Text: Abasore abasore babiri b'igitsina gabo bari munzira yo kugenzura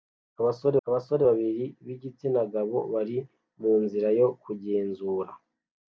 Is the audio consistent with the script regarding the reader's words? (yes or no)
yes